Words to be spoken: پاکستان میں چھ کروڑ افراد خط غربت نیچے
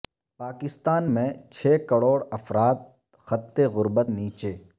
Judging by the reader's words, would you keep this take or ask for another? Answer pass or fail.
pass